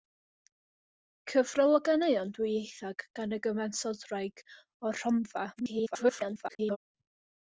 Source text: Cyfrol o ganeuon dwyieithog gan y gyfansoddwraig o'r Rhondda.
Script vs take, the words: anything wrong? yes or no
yes